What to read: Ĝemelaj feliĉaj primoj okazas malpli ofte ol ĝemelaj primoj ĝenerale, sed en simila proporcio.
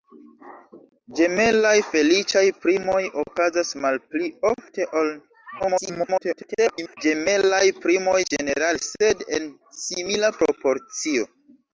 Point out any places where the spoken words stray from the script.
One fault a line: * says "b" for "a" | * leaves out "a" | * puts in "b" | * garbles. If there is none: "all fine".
* garbles